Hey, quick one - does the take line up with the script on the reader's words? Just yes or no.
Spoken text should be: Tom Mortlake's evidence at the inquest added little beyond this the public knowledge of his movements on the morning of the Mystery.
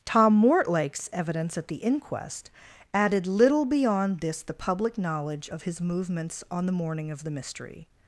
yes